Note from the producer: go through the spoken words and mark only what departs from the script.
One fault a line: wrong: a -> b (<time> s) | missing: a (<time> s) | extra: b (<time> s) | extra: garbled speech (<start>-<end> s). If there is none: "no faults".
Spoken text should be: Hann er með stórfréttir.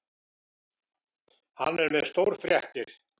no faults